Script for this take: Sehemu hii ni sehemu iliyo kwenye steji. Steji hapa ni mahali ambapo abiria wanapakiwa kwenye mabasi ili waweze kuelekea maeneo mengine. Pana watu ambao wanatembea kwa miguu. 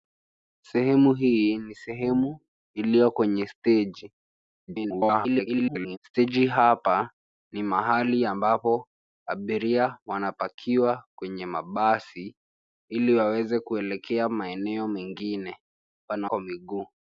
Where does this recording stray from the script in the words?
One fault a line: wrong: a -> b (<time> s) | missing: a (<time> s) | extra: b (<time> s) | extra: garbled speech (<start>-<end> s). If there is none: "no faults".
extra: garbled speech (4.7-6.0 s)
missing: watu ambao wanatembea (16.3 s)